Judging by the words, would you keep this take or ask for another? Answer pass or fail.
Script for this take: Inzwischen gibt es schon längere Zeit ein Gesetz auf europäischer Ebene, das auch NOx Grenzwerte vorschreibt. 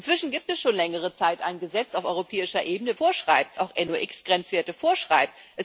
fail